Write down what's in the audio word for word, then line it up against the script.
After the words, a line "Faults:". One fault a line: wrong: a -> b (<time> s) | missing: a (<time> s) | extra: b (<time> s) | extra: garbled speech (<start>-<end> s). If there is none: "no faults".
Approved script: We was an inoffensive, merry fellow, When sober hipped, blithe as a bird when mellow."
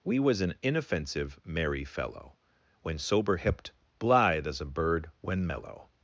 We was an inoffensive, merry fellow, When sober hipped, blithe as a bird when mellow."
Faults:
no faults